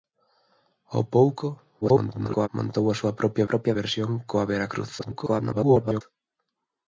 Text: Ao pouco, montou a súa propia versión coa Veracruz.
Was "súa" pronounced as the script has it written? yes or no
yes